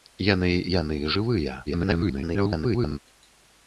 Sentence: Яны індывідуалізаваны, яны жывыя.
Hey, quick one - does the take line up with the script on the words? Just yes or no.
no